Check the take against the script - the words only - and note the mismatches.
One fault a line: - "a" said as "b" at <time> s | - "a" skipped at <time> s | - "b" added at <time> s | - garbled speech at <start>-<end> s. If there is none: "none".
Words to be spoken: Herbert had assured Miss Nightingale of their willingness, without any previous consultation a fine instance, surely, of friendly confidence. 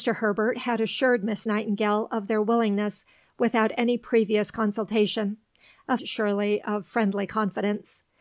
- "fine instance" skipped at 6.0 s